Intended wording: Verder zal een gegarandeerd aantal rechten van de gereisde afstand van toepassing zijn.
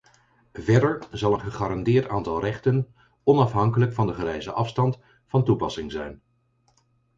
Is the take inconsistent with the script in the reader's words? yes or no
yes